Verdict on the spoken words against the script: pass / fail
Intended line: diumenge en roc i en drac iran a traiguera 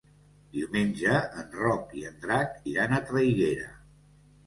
pass